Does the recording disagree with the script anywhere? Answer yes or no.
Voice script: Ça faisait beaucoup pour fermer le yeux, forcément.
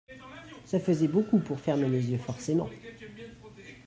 yes